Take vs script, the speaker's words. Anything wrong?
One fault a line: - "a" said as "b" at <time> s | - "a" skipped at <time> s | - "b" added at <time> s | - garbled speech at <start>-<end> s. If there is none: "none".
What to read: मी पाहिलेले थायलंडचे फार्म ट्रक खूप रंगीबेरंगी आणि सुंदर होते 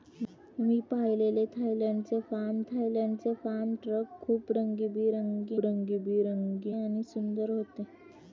- "थायलंडचे फार्म" added at 2.6 s
- "रंगीबेरंगी" added at 5.6 s